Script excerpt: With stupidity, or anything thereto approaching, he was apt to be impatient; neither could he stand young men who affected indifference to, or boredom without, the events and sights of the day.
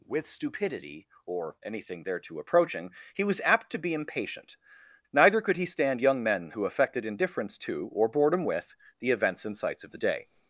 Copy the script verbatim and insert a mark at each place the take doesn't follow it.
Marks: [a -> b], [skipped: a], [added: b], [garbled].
With stupidity, or anything thereto approaching, he was apt to be impatient; neither could he stand young men who affected indifference to, or boredom [without, -> with] the events and sights of the day.